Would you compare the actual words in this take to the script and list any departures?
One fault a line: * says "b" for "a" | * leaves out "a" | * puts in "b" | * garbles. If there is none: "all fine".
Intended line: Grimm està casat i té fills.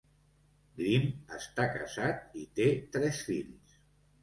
* puts in "tres"